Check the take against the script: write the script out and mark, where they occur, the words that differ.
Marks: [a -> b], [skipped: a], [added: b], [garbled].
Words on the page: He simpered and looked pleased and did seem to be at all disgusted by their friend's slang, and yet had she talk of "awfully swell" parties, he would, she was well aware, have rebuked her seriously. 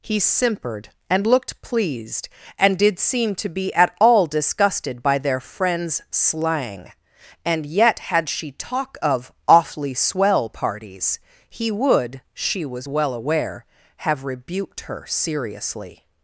He simpered and looked pleased and did seem to be at all disgusted by their friend's slang, and yet had she talk of "awfully swell" parties, he would, she was well aware, have rebuked her seriously.